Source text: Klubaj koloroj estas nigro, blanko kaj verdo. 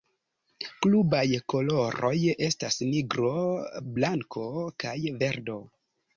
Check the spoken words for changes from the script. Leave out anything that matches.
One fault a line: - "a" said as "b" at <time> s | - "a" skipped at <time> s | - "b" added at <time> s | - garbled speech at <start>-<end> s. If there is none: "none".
none